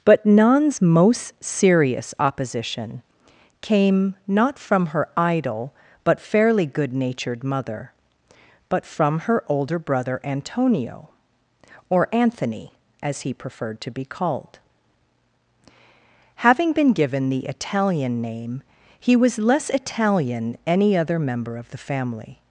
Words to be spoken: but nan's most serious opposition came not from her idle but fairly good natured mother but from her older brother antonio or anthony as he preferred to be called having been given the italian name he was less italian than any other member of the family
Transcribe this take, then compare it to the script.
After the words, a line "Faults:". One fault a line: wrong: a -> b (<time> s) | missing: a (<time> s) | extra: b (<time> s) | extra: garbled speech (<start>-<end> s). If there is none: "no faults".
but nan's most serious opposition came not from her idle but fairly good natured mother but from her older brother antonio or anthony as he preferred to be called having been given the italian name he was less italian any other member of the family
Faults:
missing: than (20.6 s)